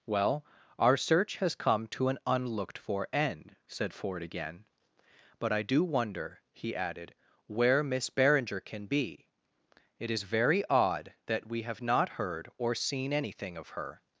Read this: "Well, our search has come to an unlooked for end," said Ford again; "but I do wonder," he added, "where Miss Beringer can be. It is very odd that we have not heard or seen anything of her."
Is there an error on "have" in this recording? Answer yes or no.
no